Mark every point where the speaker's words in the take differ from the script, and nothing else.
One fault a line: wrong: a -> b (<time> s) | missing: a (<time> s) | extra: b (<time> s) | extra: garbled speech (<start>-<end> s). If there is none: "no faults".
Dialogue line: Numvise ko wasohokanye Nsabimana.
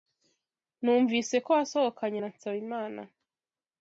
extra: na (2.2 s)